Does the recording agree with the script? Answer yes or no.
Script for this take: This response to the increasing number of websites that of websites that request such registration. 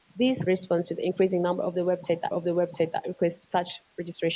yes